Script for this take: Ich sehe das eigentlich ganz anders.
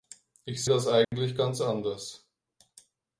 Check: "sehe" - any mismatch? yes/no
yes